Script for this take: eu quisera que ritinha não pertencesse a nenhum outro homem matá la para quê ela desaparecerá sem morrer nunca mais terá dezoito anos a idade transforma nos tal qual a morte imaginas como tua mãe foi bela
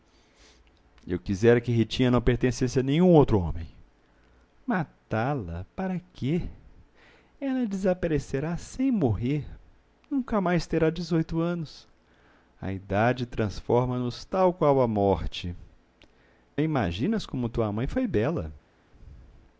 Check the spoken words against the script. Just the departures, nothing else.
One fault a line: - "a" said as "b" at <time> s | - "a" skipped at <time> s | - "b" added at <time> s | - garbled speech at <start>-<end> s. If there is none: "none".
none